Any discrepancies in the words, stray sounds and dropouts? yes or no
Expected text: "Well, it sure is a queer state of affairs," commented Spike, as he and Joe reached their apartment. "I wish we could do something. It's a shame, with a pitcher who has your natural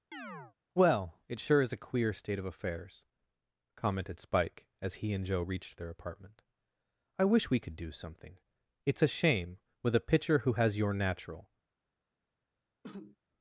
yes